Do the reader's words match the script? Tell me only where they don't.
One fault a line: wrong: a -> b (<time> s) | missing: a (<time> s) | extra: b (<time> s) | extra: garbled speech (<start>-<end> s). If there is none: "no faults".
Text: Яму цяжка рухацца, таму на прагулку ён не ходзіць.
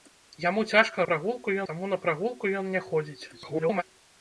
wrong: рухацца -> прагулку (1.1 s)
extra: garbled speech (3.3-3.8 s)